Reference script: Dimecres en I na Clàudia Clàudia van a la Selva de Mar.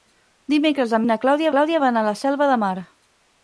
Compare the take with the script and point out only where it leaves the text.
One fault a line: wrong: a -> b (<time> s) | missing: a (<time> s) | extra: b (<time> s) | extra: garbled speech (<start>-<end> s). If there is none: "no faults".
no faults